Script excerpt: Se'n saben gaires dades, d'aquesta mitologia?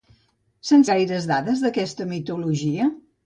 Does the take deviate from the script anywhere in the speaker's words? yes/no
yes